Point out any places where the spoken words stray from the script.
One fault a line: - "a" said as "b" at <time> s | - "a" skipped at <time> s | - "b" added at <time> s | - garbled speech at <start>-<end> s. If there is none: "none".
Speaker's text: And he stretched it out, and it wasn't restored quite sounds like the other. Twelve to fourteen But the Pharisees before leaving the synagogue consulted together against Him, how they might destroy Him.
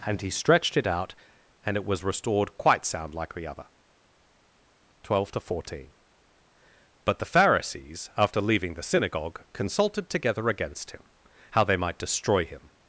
- "wasn't" said as "was" at 1.9 s
- "sounds" said as "sound" at 2.9 s
- "before" said as "after" at 8.2 s